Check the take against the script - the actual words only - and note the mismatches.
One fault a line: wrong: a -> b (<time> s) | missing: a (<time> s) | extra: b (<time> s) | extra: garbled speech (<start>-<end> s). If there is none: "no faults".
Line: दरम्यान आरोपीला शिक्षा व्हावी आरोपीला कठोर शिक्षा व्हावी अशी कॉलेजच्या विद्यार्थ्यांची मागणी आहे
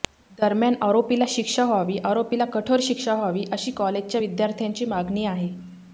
no faults